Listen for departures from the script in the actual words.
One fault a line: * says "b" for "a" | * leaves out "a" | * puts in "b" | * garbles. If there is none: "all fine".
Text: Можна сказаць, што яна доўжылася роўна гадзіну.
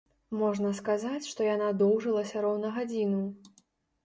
all fine